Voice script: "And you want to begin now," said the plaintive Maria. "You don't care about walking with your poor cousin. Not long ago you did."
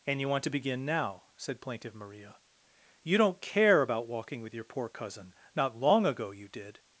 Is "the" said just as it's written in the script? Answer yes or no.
no